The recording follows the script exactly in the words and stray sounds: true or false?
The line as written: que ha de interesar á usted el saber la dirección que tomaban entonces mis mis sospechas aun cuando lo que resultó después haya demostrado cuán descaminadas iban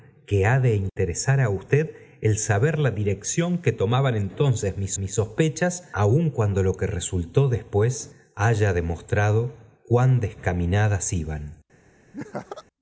false